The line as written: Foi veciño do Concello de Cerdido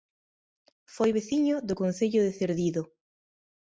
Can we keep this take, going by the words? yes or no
yes